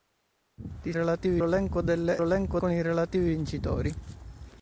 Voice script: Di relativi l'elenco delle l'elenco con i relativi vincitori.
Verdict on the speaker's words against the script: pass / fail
pass